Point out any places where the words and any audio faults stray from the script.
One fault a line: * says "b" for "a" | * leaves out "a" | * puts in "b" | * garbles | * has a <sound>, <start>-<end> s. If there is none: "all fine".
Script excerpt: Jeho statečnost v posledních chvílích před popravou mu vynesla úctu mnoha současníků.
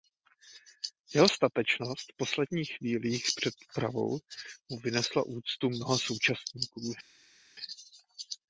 all fine